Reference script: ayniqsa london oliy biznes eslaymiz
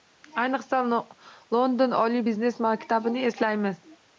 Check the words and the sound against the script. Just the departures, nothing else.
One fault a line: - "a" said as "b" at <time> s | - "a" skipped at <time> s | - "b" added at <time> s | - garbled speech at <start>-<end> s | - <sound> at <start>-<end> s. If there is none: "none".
- "maktabini" added at 2.7 s